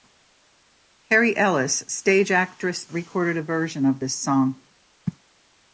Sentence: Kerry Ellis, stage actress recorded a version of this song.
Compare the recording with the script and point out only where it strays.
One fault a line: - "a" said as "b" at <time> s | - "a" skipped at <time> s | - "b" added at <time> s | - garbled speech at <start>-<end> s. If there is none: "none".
none